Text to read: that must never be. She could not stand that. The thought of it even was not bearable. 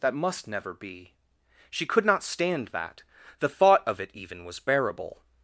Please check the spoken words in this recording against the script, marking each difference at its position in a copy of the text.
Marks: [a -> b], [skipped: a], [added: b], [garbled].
that must never be. She could not stand that. The thought of it even was [skipped: not] bearable.